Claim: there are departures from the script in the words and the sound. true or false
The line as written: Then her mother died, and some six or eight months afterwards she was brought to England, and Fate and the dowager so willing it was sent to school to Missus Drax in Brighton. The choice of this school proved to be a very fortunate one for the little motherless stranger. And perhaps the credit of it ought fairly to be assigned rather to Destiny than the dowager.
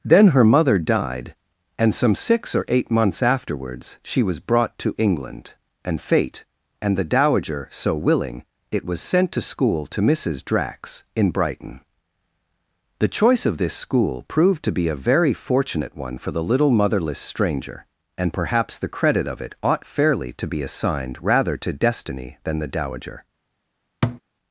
true